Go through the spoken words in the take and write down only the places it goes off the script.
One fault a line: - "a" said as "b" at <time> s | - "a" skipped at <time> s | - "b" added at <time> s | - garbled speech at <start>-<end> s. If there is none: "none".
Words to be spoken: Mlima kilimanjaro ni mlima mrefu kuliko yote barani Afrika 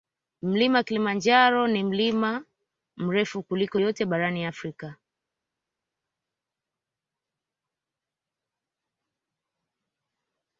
none